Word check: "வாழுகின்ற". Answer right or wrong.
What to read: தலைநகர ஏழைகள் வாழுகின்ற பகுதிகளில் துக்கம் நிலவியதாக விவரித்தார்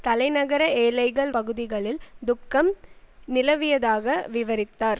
wrong